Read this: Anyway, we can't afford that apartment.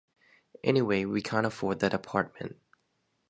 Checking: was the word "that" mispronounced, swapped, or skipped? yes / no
no